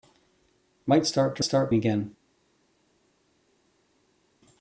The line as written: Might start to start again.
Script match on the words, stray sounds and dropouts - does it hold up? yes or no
yes